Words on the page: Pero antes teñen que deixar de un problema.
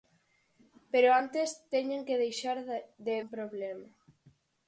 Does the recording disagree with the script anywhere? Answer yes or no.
no